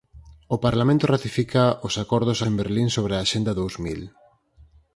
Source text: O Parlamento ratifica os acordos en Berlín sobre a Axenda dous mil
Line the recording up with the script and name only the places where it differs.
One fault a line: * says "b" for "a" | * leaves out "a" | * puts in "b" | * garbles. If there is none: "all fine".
all fine